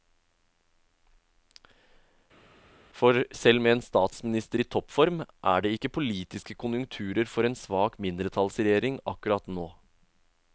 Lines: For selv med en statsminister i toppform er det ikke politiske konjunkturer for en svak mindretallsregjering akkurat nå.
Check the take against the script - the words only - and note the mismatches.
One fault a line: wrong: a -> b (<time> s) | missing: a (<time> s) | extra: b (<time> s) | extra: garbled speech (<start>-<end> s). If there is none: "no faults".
no faults